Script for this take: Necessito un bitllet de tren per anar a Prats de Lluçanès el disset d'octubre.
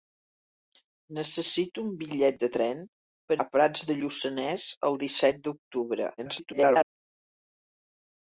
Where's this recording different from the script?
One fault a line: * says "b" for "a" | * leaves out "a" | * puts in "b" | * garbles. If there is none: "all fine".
* leaves out "anar"
* garbles